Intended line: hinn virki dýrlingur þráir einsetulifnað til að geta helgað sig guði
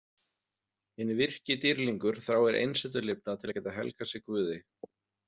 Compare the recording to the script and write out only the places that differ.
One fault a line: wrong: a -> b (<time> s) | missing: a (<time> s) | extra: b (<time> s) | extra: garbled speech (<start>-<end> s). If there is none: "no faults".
no faults